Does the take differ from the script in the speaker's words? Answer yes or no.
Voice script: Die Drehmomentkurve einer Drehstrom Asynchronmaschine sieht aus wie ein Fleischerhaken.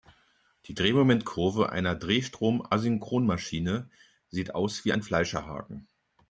no